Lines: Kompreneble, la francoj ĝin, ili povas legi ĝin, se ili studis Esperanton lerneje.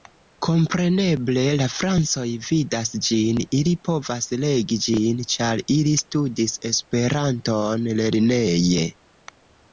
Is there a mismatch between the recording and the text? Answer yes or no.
yes